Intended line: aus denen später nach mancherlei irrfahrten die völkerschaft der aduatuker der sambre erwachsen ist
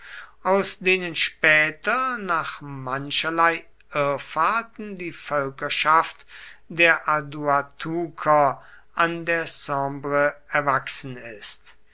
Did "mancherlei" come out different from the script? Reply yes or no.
no